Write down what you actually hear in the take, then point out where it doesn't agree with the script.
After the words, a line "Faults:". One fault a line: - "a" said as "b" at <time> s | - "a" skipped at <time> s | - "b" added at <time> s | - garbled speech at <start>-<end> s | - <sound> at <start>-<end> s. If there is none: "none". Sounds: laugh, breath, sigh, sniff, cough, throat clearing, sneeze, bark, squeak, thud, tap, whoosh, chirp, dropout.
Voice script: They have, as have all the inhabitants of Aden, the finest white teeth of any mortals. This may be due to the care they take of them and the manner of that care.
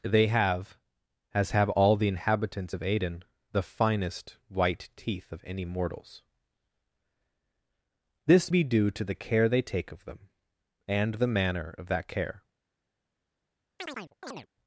They have, as have all the inhabitants of Aden, the finest white teeth of any mortals. This be due to the care they take of them and the manner of that care.
Faults:
- "may" skipped at 8.5 s
- chirp at 13.8-14.5 s